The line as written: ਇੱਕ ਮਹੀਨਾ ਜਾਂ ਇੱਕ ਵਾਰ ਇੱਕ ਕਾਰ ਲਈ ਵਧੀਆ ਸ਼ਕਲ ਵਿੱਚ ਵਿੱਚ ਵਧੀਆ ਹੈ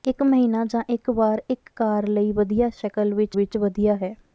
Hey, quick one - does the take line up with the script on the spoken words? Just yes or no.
yes